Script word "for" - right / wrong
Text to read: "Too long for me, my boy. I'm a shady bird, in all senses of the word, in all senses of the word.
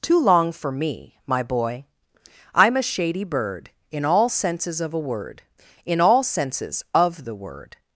right